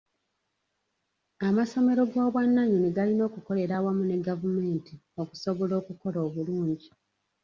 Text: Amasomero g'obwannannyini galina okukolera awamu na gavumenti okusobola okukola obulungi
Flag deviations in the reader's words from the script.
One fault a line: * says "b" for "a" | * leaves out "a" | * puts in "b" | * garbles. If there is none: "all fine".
* says "ne" for "na"